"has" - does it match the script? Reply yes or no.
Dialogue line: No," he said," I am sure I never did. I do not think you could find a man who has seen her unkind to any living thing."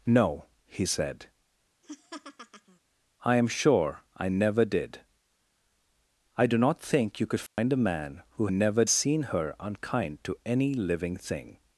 no